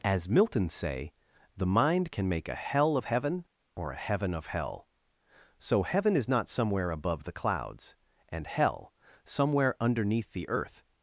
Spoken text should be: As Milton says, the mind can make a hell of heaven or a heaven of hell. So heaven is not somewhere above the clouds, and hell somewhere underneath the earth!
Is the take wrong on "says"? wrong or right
wrong